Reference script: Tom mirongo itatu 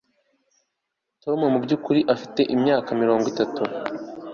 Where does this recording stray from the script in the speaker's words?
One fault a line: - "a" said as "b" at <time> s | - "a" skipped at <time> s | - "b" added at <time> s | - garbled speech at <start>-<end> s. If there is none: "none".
- "mubyukuri afite imyaka" added at 1.5 s